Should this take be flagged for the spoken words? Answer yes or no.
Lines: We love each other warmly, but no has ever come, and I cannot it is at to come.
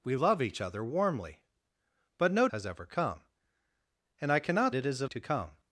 no